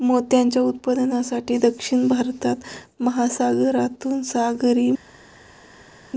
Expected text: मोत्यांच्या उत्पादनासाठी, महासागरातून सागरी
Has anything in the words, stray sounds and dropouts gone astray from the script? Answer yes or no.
yes